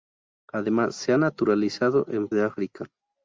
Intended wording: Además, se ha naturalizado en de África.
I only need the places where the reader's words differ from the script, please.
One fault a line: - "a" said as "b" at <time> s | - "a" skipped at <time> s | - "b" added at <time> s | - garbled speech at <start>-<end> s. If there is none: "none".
none